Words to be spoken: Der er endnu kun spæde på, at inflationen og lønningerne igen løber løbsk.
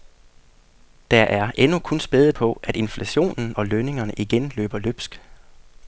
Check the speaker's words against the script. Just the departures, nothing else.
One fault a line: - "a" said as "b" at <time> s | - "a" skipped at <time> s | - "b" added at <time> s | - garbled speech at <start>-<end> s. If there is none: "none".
none